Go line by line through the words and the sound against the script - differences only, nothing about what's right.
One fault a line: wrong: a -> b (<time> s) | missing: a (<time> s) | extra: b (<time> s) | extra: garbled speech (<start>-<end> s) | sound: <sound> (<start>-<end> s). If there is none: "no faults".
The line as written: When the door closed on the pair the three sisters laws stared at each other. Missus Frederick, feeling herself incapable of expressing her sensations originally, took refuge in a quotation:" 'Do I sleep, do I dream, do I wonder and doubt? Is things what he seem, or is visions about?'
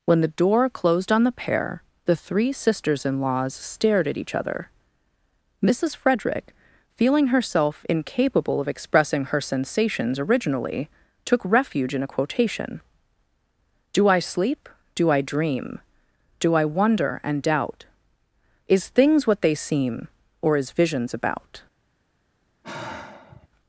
extra: in (3.0 s)
wrong: he -> they (19.4 s)
sound: sigh (22.6-23.5 s)